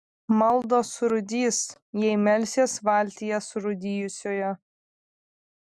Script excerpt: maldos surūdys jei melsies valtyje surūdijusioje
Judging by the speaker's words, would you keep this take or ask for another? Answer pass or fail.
pass